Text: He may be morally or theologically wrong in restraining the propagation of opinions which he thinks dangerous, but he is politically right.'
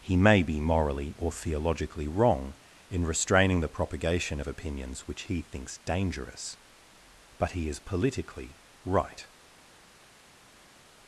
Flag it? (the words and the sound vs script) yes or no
no